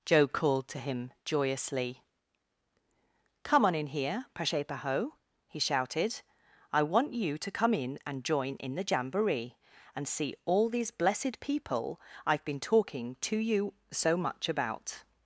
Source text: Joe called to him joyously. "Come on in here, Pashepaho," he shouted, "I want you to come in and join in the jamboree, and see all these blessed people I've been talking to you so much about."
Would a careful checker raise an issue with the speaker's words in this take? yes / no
no